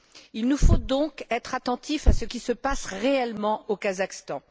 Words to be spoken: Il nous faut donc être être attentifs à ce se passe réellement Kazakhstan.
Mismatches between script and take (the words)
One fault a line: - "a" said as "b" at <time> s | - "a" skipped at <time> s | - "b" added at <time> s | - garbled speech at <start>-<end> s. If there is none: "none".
- "être" skipped at 1.6 s
- "qui" added at 2.2 s
- "au" added at 3.7 s